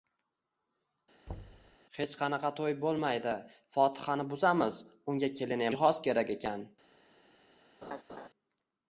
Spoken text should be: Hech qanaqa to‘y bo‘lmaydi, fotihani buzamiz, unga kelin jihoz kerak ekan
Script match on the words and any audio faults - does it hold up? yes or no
no